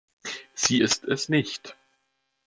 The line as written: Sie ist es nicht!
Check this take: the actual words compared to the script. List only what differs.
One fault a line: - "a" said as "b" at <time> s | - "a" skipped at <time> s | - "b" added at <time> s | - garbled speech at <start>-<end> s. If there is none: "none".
none